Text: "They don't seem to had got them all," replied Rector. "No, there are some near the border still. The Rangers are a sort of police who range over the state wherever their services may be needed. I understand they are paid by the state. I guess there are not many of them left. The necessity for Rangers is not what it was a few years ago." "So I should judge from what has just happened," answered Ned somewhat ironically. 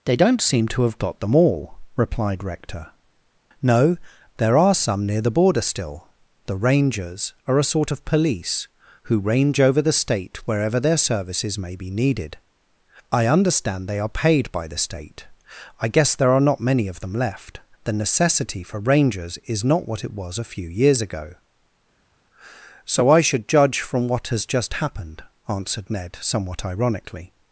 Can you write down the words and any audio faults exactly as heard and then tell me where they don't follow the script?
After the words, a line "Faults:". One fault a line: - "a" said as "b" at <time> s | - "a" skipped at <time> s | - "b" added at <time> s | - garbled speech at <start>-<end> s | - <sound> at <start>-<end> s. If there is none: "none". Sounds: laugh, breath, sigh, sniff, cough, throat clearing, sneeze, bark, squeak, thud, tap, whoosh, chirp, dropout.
"They don't seem to have got them all," replied Rector. "No, there are some near the border still. The Rangers are a sort of police who range over the state wherever their services may be needed. I understand they are paid by the state. I guess there are not many of them left. The necessity for Rangers is not what it was a few years ago." "So I should judge from what has just happened," answered Ned somewhat ironically.
Faults:
- "had" said as "have" at 0.8 s